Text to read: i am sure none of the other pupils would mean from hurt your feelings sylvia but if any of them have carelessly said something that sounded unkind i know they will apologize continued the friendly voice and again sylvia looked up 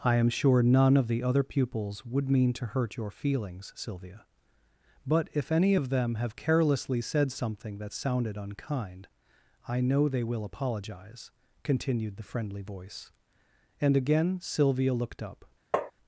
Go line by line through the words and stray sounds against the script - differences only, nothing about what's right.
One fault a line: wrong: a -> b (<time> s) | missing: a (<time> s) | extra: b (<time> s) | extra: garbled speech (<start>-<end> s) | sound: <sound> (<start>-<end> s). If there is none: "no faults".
wrong: from -> to (2.5 s)
sound: tap (15.7-15.9 s)